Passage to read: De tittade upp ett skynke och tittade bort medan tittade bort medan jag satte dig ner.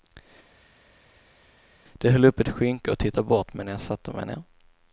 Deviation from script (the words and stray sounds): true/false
true